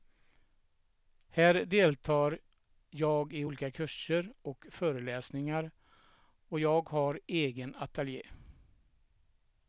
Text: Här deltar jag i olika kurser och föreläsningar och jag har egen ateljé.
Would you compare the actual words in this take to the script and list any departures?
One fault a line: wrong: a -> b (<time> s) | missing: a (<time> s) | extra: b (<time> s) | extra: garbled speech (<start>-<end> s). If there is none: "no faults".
no faults